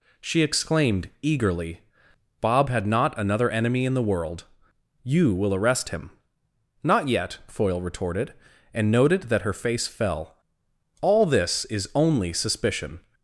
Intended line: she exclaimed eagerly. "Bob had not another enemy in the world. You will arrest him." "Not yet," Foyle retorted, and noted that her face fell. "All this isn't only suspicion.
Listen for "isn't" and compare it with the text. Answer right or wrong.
wrong